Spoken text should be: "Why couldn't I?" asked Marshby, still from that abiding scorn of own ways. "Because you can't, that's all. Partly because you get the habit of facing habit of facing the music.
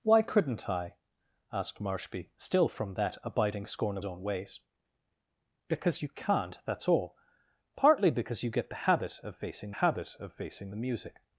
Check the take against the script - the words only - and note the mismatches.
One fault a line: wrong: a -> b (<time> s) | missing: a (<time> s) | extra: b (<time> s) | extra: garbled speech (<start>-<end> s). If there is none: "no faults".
no faults